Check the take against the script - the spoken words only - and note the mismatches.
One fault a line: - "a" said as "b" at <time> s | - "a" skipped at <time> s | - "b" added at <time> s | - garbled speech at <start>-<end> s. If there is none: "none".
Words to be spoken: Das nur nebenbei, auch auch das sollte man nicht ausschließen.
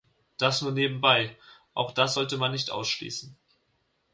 - "auch" skipped at 1.9 s